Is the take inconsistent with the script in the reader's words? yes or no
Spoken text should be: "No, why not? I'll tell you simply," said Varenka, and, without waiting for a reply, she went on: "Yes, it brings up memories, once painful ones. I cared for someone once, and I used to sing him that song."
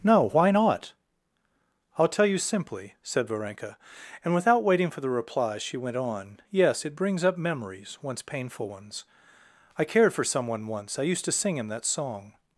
yes